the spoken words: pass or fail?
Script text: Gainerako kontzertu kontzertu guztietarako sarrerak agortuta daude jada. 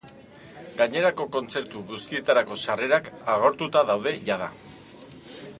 fail